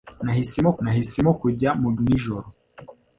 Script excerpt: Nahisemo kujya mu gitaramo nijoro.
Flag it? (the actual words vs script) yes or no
yes